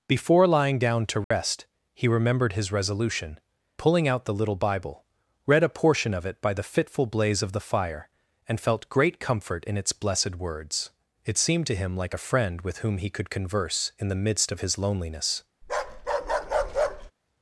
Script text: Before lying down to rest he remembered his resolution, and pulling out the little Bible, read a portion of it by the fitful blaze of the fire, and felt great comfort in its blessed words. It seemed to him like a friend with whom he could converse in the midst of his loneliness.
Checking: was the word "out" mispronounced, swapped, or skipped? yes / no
no